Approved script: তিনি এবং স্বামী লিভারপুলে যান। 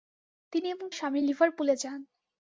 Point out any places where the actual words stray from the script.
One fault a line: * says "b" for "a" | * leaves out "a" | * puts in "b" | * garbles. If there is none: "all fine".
all fine